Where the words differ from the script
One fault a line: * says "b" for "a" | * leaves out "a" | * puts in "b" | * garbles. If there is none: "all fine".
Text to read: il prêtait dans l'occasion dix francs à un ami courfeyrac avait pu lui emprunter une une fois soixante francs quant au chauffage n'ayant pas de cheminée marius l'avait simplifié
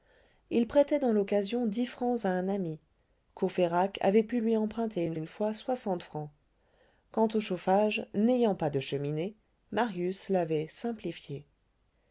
all fine